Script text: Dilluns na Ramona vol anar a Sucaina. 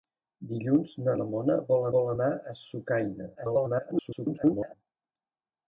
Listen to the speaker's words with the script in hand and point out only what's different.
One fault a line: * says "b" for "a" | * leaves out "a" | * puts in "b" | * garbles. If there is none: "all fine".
* puts in "vol"
* garbles